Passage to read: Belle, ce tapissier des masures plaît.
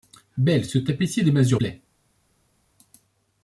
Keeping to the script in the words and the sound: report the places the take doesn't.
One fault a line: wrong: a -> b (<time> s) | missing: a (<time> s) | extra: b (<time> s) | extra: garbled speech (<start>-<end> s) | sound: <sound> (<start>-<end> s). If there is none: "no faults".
no faults